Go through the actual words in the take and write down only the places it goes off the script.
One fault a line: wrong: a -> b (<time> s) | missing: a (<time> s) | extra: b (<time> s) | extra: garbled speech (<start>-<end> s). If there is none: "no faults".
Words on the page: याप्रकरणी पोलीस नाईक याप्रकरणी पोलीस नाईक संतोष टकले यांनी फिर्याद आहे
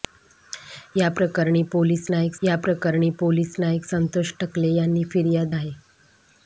no faults